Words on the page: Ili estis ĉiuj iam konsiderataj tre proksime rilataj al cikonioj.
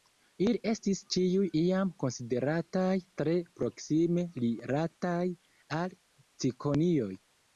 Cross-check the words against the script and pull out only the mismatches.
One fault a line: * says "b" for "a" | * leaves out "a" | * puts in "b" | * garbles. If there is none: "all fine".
all fine